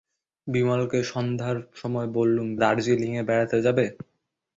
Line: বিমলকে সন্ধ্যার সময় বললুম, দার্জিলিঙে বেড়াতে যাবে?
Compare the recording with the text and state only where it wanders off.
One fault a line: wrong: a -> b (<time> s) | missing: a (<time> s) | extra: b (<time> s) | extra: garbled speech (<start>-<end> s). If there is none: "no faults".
no faults